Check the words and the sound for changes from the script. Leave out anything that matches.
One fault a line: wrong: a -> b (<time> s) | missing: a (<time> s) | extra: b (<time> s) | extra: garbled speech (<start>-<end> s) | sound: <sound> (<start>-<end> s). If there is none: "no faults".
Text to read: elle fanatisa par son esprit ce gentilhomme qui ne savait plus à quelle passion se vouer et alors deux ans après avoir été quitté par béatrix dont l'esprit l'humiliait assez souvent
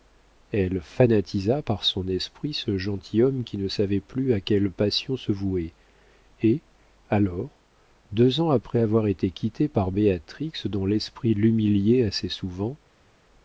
no faults